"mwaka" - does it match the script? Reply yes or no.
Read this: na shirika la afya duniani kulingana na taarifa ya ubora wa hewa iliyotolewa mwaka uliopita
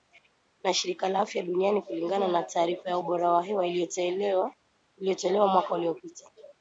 yes